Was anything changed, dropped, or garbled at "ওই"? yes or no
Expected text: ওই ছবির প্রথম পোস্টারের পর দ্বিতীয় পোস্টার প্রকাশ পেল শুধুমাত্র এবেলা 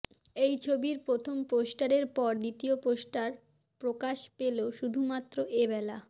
yes